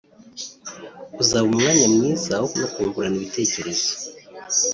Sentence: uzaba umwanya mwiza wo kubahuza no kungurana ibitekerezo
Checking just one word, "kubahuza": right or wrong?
wrong